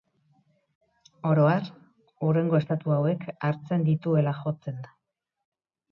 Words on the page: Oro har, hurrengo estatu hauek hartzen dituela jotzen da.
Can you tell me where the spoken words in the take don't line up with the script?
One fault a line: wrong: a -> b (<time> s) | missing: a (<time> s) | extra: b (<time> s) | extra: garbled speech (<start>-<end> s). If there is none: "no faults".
no faults